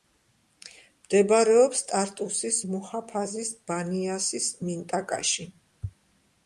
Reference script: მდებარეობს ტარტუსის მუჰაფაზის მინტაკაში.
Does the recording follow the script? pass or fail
fail